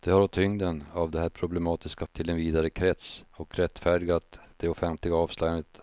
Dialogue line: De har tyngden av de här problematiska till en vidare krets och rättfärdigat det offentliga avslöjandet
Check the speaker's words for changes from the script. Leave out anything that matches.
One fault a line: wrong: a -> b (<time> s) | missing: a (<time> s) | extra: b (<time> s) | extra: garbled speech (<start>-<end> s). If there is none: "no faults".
no faults